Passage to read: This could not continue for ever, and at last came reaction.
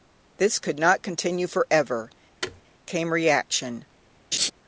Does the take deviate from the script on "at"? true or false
true